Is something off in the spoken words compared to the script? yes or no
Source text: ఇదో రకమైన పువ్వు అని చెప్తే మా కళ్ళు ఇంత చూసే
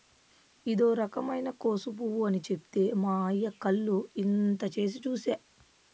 yes